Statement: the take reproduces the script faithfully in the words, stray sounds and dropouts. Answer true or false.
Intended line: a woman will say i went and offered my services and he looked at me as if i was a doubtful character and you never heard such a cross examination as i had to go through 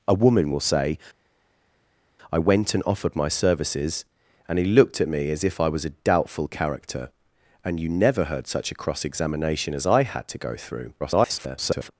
false